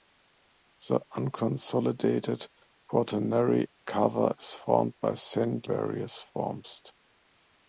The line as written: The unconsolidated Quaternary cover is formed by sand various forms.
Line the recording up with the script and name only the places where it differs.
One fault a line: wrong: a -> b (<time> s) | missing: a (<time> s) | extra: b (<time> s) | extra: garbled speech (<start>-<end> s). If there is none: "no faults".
no faults